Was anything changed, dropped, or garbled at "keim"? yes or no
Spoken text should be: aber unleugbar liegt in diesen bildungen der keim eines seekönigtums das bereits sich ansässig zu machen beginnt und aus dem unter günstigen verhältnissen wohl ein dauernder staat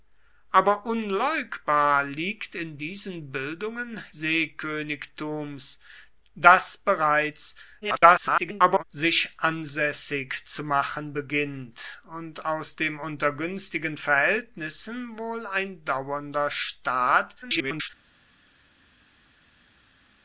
yes